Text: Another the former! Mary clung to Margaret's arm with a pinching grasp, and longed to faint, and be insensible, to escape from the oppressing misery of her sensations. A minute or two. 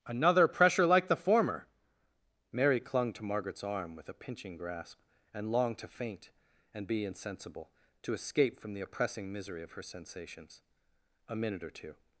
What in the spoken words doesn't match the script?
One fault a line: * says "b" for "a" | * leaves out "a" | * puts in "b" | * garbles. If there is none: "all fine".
* puts in "pressure like"